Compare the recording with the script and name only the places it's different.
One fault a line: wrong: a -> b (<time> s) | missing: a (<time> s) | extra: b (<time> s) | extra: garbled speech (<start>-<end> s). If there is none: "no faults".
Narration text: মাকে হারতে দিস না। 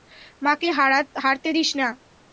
no faults